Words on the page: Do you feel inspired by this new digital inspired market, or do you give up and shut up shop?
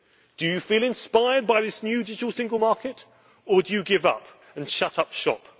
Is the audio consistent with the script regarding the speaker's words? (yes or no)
no